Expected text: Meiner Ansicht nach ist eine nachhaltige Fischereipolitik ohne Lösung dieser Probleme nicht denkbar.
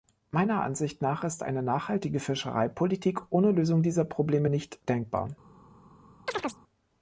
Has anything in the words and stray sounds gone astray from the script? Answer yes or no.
yes